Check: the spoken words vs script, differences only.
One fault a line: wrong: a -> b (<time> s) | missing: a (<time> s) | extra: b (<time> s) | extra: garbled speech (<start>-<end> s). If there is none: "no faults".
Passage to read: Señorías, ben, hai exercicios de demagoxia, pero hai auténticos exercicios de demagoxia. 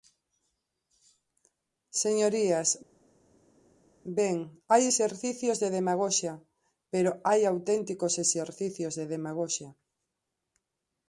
no faults